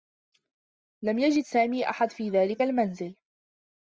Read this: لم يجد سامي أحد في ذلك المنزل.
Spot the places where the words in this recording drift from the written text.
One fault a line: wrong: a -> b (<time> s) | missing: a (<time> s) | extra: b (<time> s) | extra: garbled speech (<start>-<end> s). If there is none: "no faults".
no faults